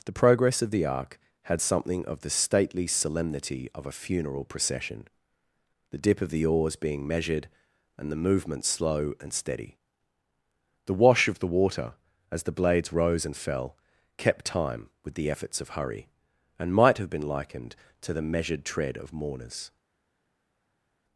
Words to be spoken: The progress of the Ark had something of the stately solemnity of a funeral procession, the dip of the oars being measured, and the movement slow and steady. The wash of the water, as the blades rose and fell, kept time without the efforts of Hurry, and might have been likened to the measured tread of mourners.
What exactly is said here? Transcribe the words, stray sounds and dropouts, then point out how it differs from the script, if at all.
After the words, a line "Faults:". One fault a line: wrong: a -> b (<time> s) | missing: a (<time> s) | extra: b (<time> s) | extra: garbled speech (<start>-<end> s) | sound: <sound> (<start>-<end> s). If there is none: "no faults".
The progress of the Ark had something of the stately solemnity of a funeral procession, the dip of the oars being measured, and the movement slow and steady. The wash of the water, as the blades rose and fell, kept time with the efforts of Hurry, and might have been likened to the measured tread of mourners.
Faults:
wrong: without -> with (15.0 s)